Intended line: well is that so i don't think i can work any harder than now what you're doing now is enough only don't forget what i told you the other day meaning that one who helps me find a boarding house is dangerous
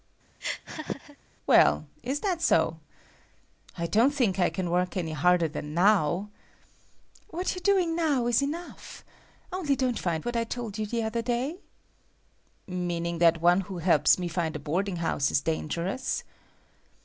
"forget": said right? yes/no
no